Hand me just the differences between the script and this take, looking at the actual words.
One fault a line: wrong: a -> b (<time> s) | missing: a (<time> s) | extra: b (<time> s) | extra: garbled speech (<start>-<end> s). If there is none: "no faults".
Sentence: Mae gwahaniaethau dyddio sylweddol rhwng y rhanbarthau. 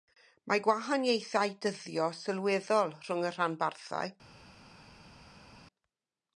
no faults